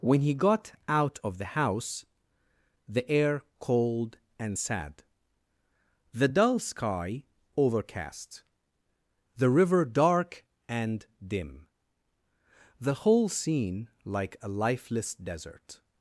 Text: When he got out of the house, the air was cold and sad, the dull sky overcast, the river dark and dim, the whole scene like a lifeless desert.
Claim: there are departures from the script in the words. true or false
true